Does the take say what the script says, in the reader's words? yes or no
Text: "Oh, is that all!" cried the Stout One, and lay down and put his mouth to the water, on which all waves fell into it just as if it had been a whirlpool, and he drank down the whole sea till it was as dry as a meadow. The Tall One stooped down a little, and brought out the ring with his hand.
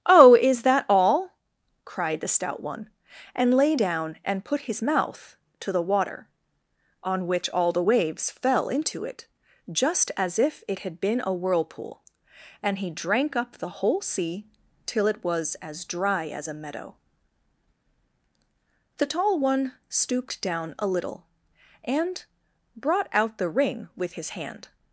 no